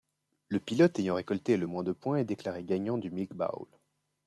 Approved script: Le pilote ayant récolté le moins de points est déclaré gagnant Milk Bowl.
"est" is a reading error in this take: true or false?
false